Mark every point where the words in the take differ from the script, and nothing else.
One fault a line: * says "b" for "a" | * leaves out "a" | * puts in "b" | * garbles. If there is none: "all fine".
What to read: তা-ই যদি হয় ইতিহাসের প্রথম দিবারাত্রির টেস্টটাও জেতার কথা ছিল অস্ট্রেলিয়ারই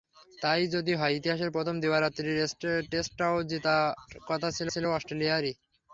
* puts in "ছিল"